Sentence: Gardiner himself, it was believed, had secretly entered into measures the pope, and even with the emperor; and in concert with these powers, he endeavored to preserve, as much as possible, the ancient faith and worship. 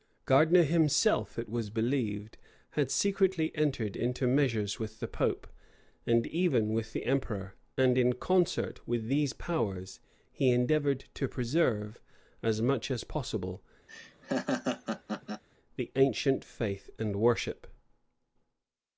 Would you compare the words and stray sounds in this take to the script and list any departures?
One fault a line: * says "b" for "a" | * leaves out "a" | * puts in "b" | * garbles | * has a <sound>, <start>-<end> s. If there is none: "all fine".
* puts in "with"
* has a laugh, 13.9-15.4 s